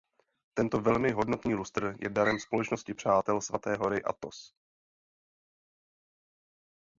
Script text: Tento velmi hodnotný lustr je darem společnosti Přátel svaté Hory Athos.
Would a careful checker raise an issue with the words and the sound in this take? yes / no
no